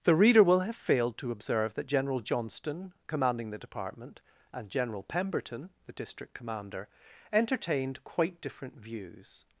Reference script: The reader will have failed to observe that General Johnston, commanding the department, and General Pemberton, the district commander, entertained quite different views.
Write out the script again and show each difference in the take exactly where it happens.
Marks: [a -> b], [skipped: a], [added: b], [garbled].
The reader will have failed to observe that General Johnston, commanding the department, and General Pemberton, the district commander, entertained quite different views.